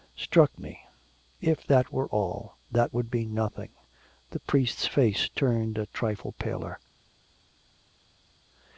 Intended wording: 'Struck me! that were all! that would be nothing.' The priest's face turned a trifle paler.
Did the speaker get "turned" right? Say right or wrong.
right